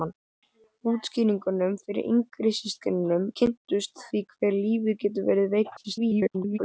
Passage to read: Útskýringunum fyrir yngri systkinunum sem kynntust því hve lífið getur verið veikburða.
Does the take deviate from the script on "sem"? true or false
true